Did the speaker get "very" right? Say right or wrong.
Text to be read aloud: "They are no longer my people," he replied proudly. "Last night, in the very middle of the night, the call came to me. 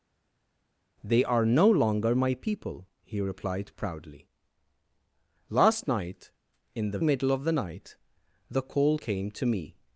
wrong